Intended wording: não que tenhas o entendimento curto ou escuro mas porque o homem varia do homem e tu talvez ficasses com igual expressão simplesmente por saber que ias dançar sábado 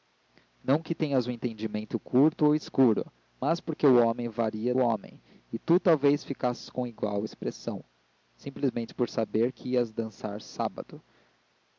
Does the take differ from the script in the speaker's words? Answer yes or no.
yes